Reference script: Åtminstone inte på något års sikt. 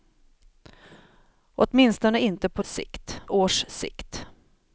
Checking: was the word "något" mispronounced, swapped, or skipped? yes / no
yes